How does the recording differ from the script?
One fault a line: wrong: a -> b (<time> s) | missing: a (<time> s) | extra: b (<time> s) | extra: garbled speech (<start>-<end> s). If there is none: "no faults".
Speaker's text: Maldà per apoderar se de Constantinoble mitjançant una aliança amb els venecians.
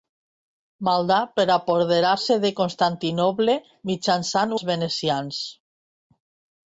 missing: una aliança amb (4.6 s)